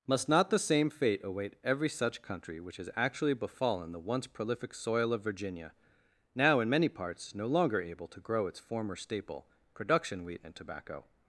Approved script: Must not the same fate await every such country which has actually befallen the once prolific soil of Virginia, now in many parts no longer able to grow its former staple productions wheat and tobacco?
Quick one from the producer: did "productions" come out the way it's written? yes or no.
no